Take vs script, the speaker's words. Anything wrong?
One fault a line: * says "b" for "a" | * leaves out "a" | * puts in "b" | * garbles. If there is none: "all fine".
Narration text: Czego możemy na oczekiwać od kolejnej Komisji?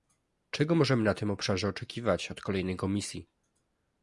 * puts in "tym obszarze"